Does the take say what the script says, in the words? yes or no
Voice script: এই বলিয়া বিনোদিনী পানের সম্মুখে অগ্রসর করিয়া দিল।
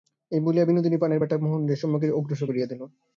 no